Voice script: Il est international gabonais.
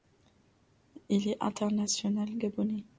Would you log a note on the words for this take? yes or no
no